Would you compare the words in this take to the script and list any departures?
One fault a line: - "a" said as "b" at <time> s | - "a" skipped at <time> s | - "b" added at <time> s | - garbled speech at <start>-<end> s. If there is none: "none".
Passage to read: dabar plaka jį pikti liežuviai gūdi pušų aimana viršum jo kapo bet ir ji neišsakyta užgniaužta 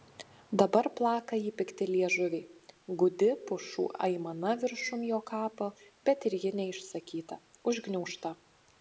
none